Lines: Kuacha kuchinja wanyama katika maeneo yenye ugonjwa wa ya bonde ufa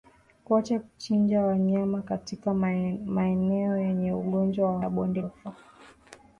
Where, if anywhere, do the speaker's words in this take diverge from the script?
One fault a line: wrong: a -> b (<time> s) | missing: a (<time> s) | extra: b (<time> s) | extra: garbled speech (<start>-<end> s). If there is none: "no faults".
no faults